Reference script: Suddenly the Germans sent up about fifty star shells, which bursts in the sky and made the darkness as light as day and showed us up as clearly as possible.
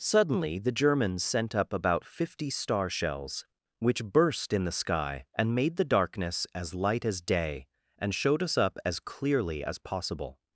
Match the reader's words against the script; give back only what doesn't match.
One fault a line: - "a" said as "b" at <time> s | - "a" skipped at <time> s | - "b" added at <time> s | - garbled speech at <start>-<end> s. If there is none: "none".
- "bursts" said as "burst" at 4.0 s